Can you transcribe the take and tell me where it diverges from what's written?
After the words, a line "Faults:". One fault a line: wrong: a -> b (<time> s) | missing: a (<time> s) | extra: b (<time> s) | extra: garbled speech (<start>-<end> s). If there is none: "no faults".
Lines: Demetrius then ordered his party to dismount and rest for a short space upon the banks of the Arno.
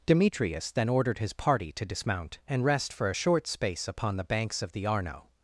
Demetrius then ordered his party to dismount and rest for a short space upon the banks of the Arno.
Faults:
no faults